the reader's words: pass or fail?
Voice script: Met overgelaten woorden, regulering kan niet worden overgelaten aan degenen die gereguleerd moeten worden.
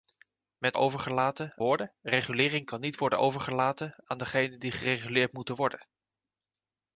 pass